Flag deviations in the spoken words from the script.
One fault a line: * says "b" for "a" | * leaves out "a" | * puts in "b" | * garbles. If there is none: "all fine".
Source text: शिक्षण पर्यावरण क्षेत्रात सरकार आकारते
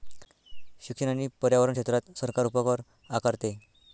* puts in "आणि"
* puts in "उपकर"